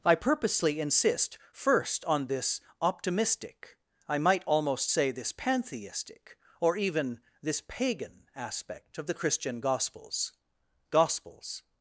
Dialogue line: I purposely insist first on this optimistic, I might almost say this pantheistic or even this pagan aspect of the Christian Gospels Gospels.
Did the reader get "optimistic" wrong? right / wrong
right